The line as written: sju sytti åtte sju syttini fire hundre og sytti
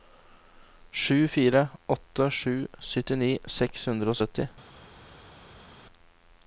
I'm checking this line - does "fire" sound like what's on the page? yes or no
no